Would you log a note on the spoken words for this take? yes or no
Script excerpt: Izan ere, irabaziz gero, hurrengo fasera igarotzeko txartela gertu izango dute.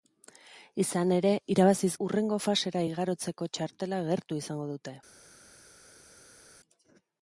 yes